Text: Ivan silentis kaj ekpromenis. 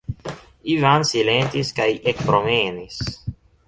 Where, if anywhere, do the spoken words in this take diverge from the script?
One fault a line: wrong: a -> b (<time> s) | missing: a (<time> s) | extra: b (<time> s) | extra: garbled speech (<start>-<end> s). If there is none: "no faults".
no faults